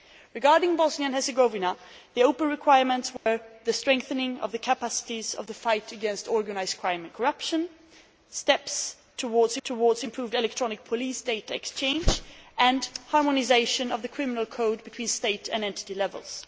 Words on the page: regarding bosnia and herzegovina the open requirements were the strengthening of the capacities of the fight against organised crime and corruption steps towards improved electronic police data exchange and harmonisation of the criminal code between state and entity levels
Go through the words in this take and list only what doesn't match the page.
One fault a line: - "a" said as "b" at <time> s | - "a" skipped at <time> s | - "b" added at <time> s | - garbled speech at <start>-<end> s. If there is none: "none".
- "towards" added at 9.6 s